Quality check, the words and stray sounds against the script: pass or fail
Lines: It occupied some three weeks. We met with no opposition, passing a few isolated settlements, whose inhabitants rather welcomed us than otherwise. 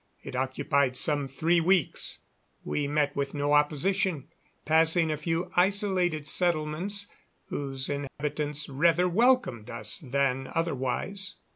fail